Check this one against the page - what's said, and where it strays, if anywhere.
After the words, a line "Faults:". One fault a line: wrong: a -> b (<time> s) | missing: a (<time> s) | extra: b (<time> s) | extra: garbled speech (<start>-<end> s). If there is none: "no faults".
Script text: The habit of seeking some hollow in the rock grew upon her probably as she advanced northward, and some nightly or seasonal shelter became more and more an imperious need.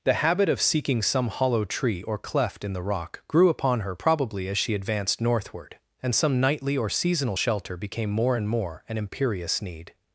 The habit of seeking some hollow tree or cleft in the rock grew upon her probably as she advanced northward, and some nightly or seasonal shelter became more and more an imperious need.
Faults:
extra: tree or cleft (1.6 s)